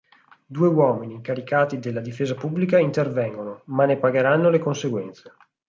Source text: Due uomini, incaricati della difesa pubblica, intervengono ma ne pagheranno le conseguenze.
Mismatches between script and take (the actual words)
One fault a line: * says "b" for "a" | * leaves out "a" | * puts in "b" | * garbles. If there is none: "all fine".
all fine